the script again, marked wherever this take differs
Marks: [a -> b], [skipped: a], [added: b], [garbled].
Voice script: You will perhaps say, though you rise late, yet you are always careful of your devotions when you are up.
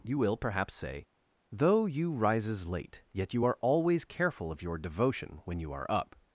You will perhaps say, though you [rise -> rises] late, yet you are always careful of your [devotions -> devotion] when you are up.